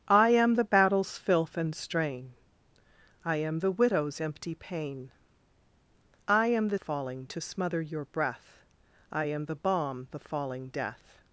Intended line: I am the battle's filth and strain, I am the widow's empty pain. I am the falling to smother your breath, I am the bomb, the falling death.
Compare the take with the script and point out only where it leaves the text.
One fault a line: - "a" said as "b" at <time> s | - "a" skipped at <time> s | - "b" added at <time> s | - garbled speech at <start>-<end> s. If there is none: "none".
none